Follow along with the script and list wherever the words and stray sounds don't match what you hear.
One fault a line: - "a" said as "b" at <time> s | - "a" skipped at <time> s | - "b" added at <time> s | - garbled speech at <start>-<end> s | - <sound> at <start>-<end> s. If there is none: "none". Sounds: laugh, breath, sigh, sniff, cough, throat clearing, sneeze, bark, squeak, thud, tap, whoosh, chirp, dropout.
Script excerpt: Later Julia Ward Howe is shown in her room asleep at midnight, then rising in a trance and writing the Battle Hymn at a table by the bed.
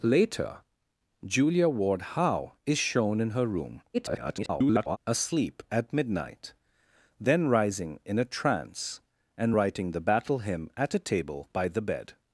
- garbled speech at 3.9-5.0 s